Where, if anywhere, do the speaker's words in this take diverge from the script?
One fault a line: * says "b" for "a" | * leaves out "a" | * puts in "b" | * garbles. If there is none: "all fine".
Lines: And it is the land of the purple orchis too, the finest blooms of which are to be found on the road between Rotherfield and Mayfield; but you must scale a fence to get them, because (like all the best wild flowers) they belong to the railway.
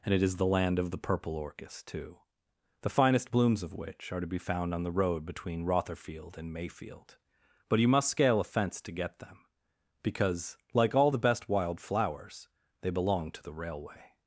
all fine